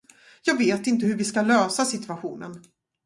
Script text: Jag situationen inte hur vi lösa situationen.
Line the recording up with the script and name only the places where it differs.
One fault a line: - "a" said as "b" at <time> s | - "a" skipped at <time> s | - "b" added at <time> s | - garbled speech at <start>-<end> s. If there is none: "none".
- "situationen" said as "vet" at 0.6 s
- "ska" added at 1.2 s